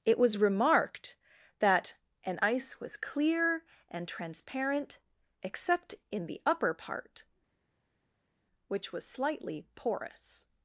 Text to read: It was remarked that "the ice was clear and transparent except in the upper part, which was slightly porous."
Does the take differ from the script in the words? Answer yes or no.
yes